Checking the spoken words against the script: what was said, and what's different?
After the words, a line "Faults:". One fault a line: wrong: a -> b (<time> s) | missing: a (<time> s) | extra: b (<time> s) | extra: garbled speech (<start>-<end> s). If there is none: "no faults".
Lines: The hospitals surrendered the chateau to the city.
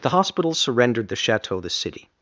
The hospitals surrendered the chateau the city.
Faults:
missing: to (1.6 s)